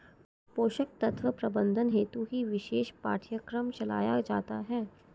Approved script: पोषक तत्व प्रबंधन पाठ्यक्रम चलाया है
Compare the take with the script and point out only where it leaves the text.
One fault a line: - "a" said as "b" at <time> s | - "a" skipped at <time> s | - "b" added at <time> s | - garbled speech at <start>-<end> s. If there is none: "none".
- "हेतु ही विशेष" added at 1.9 s
- "जाता" added at 4.2 s